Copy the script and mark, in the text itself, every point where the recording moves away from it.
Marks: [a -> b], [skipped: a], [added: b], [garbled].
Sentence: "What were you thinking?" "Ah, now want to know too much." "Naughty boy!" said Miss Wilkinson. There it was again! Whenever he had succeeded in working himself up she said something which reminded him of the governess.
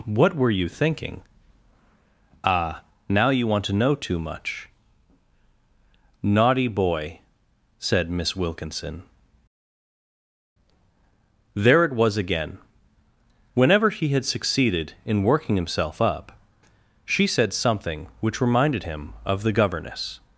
"What were you thinking?" "Ah, now [added: you] want to know too much." "Naughty boy!" said Miss Wilkinson. There it was again! Whenever he had succeeded in working himself up she said something which reminded him of the governess.